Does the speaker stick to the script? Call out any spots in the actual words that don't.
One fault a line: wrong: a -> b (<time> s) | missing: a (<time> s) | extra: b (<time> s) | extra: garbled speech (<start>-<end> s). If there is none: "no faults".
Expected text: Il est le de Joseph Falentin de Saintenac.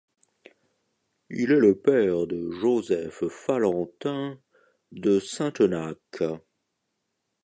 extra: père (1.8 s)